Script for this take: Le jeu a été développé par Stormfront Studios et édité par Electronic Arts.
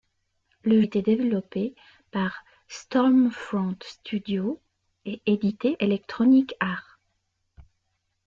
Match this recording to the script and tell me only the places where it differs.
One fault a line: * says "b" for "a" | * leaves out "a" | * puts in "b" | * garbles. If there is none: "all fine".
* leaves out "jeu a"
* leaves out "par"